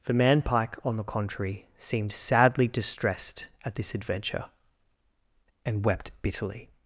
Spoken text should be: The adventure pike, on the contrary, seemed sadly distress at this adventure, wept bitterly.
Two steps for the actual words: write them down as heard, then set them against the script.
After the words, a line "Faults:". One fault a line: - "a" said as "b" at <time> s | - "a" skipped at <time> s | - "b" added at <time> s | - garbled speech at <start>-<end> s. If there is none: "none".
The man pike, on the contrary, seemed sadly distressed at this adventure, and wept bitterly.
Faults:
- "adventure" said as "man" at 0.1 s
- "distress" said as "distressed" at 2.7 s
- "and" added at 5.6 s